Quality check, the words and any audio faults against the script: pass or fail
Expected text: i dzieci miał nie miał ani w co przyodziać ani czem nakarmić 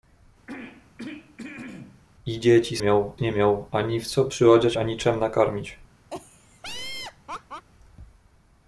fail